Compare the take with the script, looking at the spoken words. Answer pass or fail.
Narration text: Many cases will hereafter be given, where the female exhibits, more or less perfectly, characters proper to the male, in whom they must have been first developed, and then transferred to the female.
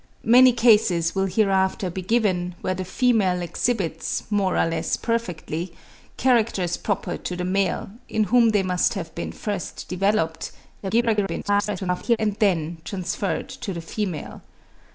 fail